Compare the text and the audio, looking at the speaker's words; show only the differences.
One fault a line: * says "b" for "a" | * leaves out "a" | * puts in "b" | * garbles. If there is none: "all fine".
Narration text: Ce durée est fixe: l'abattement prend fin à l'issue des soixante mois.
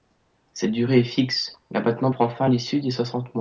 * says "Cette" for "Ce"